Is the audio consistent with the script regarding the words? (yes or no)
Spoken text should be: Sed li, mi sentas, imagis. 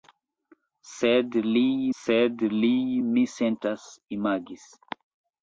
no